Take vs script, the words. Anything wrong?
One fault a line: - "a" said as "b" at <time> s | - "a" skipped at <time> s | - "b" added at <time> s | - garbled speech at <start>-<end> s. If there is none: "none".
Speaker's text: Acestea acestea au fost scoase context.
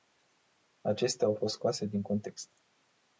- "acestea" skipped at 1.3 s
- "din" added at 1.9 s